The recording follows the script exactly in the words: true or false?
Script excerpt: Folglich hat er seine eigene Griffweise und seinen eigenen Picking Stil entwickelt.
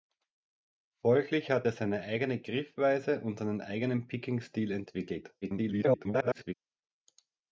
false